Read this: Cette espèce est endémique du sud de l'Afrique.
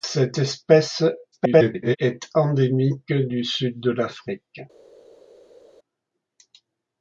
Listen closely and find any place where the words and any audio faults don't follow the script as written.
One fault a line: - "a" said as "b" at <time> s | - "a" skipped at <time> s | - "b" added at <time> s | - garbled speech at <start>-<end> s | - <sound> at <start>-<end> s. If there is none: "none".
- garbled speech at 1.3-2.0 s